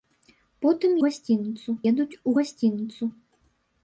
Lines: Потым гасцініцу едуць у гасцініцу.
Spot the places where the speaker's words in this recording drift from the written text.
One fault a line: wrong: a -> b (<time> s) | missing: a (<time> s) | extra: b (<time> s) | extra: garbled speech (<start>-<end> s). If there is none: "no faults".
no faults